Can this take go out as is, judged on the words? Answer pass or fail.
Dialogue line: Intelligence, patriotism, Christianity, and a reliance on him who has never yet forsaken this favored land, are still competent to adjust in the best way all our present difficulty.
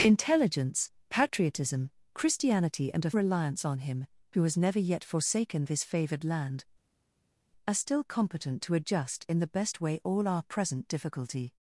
pass